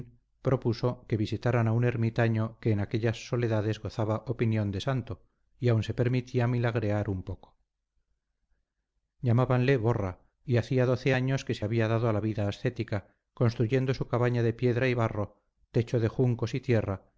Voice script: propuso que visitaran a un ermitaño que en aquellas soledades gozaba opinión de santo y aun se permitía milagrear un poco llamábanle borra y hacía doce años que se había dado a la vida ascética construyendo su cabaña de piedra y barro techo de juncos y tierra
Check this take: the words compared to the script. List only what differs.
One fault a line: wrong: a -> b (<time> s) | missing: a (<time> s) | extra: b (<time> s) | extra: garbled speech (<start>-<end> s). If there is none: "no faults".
no faults